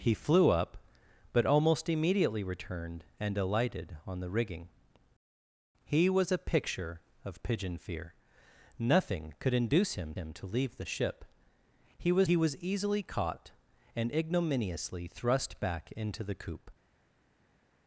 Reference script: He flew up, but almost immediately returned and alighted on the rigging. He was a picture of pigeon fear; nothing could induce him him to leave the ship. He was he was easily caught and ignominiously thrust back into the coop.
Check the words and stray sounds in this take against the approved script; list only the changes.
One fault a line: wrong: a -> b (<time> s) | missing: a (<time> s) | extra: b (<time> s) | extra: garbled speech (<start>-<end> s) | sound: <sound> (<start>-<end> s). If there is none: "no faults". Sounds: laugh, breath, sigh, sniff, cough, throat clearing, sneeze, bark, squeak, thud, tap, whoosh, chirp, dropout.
no faults